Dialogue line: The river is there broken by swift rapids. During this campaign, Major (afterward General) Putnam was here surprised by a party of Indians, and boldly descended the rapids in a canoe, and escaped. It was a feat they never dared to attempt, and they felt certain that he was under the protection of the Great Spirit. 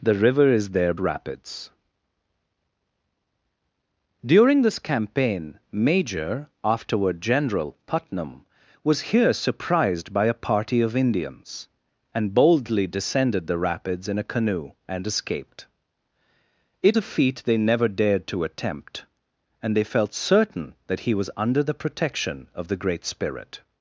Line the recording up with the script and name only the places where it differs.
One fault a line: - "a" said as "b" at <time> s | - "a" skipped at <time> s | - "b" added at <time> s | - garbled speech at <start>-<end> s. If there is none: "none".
- "broken by swift" skipped at 0.9 s
- "was" skipped at 17.0 s